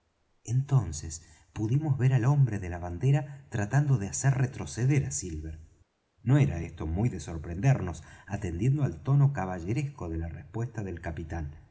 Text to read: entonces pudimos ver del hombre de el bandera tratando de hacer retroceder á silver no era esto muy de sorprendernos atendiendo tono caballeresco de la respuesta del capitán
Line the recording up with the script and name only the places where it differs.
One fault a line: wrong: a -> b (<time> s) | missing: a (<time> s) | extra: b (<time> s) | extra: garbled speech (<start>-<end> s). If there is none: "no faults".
wrong: del -> al (2.1 s)
wrong: el -> la (2.7 s)
extra: al (8.8 s)